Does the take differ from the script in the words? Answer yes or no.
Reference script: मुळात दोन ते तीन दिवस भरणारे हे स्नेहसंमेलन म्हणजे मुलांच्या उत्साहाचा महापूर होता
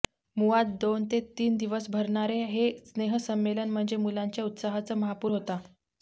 no